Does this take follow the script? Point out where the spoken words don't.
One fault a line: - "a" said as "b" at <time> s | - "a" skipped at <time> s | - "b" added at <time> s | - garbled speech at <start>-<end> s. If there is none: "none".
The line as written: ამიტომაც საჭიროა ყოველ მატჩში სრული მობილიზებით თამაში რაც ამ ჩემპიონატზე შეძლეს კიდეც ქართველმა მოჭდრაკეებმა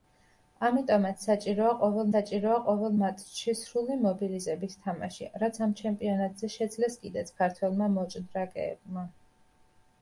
- "საჭიროა ყოველ" added at 2.1 s